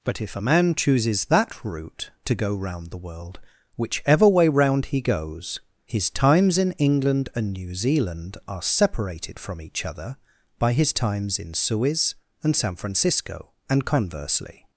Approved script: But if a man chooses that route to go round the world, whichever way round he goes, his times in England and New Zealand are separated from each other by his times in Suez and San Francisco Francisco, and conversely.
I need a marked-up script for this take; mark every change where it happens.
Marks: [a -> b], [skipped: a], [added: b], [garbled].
But if a man chooses that route to go round the world, whichever way round he goes, his times in England and New Zealand are separated from each other by his times in Suez and San Francisco [skipped: Francisco,] and conversely.